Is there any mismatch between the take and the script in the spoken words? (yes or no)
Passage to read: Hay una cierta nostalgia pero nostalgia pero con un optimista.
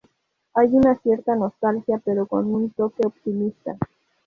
yes